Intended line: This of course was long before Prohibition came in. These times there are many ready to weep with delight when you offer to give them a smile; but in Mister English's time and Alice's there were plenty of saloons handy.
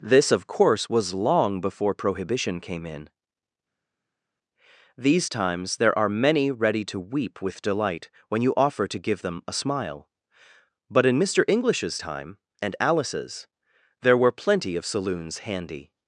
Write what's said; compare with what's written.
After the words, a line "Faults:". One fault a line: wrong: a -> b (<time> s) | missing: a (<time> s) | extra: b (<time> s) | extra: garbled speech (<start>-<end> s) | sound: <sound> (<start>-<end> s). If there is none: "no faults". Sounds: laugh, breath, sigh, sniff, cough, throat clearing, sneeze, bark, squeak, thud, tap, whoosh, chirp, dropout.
This of course was long before Prohibition came in. These times there are many ready to weep with delight when you offer to give them a smile; but in Mister English's time and Alice's there were plenty of saloons handy.
Faults:
no faults